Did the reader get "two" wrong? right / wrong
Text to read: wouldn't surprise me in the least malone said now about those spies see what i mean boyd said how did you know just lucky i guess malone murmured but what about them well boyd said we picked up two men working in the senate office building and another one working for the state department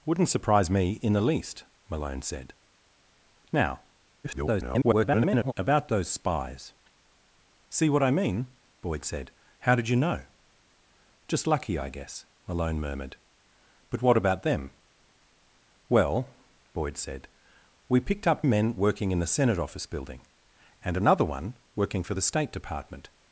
wrong